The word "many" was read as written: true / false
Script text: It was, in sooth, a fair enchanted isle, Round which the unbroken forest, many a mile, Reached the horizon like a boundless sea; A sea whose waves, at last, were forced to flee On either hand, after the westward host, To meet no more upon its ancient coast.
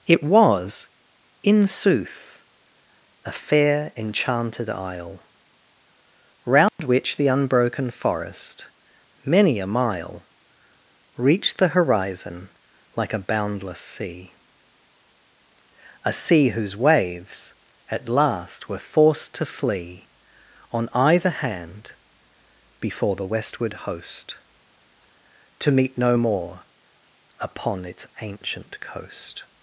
true